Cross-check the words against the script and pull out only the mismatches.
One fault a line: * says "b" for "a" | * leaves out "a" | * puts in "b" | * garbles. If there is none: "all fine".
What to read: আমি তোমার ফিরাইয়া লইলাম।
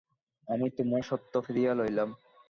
* puts in "সত্য"